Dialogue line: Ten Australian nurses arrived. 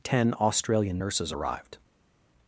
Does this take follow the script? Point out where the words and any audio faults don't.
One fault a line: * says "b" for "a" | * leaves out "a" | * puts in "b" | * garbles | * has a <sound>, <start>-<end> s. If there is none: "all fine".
all fine